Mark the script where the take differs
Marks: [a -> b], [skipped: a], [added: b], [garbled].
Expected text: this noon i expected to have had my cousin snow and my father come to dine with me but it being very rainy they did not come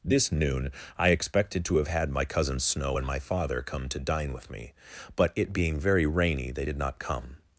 this noon i expected to have had my cousin snow and my father come to dine with me but it being very rainy they did not come